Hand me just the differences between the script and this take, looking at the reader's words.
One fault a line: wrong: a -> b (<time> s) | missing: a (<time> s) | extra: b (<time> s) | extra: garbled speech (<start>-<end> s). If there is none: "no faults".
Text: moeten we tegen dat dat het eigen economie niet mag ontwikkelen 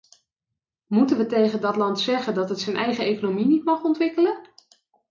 extra: land zeggen (1.8 s)
extra: zijn (2.6 s)